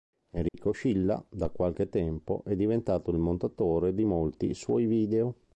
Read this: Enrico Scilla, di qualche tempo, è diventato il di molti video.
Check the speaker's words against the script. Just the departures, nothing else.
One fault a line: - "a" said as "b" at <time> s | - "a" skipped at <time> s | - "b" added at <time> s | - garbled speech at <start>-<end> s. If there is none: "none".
- "di" said as "da" at 1.3 s
- "montatore" added at 3.2 s
- "suoi" added at 4.5 s